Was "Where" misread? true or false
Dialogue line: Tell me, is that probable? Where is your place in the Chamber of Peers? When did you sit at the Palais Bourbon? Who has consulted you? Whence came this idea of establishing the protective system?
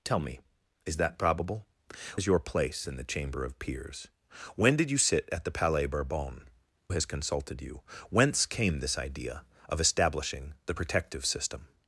true